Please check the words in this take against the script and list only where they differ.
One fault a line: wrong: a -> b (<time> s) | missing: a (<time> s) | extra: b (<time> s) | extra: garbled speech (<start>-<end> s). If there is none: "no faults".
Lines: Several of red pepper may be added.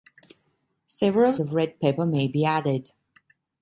no faults